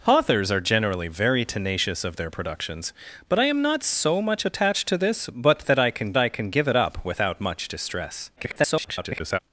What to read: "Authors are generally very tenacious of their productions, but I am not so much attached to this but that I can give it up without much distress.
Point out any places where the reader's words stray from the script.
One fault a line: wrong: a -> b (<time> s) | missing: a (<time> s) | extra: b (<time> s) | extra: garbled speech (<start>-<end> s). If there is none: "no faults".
extra: I can (6.2 s)
extra: garbled speech (8.4-9.4 s)